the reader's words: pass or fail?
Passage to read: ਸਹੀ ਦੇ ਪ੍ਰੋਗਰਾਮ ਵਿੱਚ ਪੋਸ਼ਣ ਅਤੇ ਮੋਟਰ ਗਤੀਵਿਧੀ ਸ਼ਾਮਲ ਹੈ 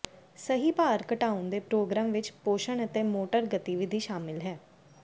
fail